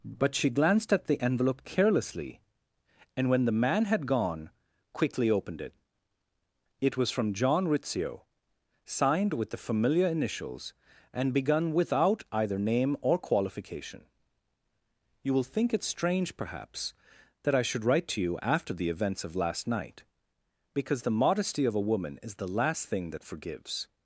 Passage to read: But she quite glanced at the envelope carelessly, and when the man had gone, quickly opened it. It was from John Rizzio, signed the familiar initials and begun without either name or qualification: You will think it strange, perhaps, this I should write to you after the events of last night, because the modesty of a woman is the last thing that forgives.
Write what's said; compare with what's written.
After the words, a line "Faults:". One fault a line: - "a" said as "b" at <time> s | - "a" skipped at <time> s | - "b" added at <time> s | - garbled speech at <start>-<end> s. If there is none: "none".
But she glanced at the envelope carelessly, and when the man had gone, quickly opened it. It was from John Rizzio, signed with the familiar initials and begun without either name or qualification: You will think it strange, perhaps, that I should write to you after the events of last night, because the modesty of a woman is the last thing that forgives.
Faults:
- "quite" skipped at 0.5 s
- "with" added at 9.3 s
- "this" said as "that" at 17.4 s